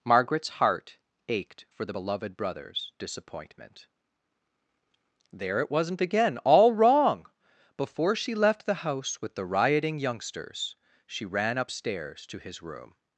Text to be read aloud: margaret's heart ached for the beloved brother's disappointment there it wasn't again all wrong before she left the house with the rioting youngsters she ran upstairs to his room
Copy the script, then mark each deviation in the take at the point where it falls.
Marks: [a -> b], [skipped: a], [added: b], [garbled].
margaret's heart ached for the beloved brother's disappointment there it wasn't again all wrong before she left the house with the rioting youngsters she ran upstairs to his room